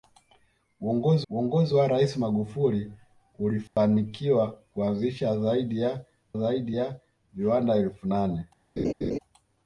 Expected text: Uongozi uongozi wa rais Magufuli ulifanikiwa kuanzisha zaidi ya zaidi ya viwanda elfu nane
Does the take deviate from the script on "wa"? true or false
false